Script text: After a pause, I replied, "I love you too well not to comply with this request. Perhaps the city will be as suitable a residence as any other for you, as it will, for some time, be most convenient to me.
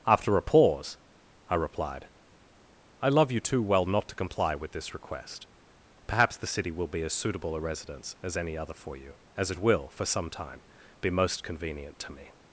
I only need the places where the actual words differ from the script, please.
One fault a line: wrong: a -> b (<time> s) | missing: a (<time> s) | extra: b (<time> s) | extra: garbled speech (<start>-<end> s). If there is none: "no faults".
no faults